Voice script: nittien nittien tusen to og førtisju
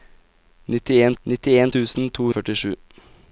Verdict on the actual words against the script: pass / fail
pass